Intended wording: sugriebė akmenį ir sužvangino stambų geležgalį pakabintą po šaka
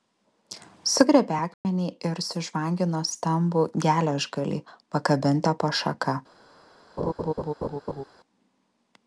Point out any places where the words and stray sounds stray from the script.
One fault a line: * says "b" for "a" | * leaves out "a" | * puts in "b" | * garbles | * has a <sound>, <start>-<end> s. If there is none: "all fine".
* has a dropout, 1.5-1.6 s
* has a laugh, 7.0-8.0 s